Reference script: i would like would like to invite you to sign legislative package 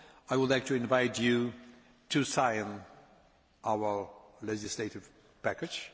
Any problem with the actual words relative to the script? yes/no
yes